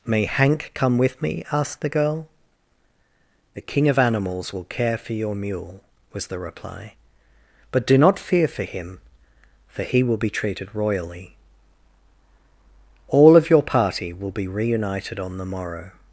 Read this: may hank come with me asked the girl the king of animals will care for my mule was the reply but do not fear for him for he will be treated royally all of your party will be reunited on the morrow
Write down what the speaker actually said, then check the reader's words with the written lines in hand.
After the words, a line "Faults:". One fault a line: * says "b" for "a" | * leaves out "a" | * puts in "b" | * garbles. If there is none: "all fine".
may hank come with me asked the girl the king of animals will care for your mule was the reply but do not fear for him for he will be treated royally all of your party will be reunited on the morrow
Faults:
* says "your" for "my"